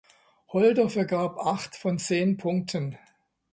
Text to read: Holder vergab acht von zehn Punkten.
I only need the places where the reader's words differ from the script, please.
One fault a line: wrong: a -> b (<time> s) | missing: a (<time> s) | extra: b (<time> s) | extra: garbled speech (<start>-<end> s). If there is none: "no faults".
no faults